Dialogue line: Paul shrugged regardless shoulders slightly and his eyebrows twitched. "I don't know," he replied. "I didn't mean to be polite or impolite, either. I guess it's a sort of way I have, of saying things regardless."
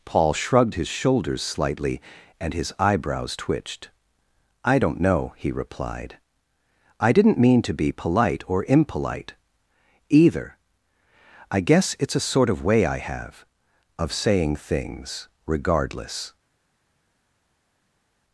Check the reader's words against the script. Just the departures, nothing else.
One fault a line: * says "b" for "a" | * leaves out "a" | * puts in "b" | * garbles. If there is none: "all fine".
* says "his" for "regardless"